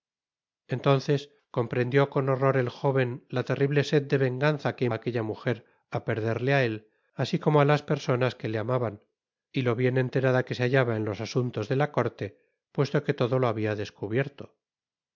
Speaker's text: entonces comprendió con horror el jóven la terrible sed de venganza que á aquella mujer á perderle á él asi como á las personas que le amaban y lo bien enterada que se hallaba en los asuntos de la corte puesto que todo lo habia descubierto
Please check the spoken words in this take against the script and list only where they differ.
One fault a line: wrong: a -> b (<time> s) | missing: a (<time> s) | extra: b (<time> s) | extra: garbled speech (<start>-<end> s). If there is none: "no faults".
no faults